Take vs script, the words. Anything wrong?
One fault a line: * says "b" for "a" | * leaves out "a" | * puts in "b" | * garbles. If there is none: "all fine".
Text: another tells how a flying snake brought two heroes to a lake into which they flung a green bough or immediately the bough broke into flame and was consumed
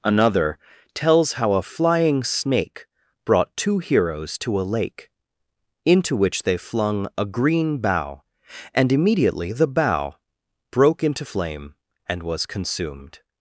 * says "and" for "or"